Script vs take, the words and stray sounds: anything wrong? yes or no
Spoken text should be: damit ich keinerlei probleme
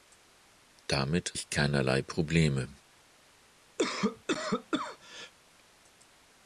yes